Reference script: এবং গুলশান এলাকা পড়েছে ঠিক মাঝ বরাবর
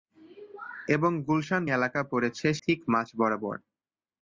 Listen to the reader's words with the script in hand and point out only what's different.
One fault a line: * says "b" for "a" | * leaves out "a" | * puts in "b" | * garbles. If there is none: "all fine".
all fine